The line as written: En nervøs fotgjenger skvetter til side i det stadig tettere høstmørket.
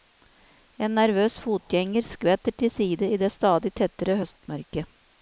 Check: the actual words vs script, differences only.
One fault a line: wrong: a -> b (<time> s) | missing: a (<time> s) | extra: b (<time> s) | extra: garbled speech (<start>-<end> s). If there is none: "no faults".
no faults